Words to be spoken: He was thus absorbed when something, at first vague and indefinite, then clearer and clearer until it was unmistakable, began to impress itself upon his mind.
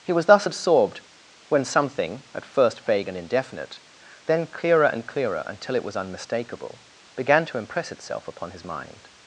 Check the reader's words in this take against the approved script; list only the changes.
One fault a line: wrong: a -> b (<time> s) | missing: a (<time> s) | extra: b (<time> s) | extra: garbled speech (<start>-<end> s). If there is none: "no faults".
no faults